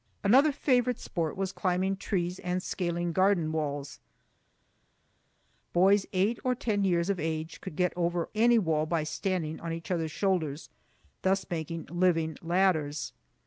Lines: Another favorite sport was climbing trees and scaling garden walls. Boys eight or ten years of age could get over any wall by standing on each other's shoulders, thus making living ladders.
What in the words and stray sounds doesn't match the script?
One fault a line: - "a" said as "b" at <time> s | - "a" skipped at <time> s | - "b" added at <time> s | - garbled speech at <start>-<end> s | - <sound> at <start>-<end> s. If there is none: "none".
none